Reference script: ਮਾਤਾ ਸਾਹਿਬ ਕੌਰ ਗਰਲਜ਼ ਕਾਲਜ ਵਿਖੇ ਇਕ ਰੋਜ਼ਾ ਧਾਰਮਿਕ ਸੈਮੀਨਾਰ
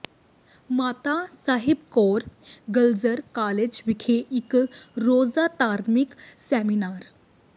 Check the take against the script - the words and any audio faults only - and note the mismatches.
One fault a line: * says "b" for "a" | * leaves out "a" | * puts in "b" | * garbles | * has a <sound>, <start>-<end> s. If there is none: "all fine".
all fine